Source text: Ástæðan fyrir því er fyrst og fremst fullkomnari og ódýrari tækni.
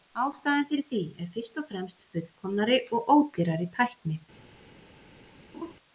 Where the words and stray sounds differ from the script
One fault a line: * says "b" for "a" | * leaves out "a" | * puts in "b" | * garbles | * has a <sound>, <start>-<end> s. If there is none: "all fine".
* has a laugh, 5.5-5.7 s